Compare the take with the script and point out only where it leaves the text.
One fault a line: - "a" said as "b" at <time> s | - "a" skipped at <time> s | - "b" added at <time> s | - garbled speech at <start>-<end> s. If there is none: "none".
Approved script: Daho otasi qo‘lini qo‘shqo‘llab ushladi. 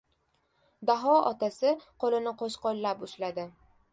none